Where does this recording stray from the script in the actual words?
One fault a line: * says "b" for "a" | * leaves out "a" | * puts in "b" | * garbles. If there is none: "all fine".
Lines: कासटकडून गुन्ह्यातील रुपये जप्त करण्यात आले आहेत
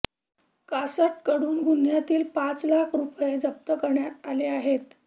* puts in "पाच लाख"